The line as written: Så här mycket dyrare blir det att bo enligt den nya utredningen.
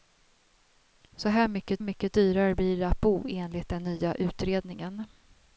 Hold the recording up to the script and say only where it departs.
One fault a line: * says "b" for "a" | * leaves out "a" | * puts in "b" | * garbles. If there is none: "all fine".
* puts in "mycket"